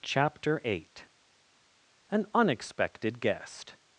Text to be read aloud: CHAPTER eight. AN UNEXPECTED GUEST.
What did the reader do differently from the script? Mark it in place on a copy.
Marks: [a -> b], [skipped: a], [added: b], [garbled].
CHAPTER eight. AN UNEXPECTED GUEST.